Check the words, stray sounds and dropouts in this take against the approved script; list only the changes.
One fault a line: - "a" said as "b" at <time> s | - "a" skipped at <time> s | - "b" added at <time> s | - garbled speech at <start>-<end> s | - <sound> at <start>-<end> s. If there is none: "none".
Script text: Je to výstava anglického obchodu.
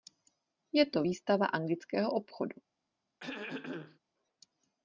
- throat clearing at 3.2-4.0 s